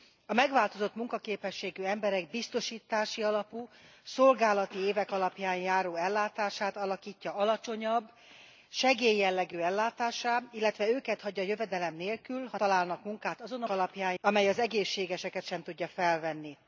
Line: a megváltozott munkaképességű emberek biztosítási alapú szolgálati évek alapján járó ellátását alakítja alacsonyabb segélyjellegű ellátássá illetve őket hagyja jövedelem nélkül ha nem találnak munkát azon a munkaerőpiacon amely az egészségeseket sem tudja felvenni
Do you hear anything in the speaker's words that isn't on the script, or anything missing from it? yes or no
yes